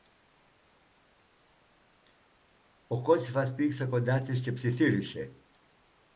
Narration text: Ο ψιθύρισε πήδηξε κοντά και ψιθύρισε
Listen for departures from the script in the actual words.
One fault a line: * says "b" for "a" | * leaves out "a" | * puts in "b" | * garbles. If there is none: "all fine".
* says "κότσυφας" for "ψιθύρισε"
* puts in "της"